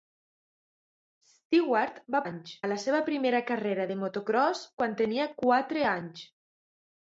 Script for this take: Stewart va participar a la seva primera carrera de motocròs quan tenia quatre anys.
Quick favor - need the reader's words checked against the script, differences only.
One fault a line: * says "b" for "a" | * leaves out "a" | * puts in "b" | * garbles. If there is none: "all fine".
* says "anys" for "participar"